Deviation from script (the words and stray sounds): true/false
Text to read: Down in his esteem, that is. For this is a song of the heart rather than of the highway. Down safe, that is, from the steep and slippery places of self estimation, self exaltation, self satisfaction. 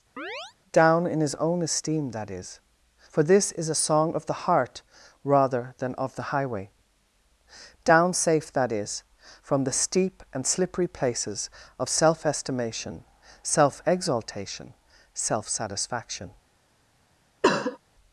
true